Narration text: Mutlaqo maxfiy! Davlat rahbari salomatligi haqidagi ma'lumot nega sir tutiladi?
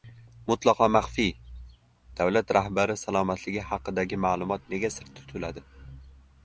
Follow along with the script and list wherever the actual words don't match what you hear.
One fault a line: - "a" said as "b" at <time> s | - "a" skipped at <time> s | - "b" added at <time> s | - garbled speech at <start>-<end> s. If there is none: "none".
none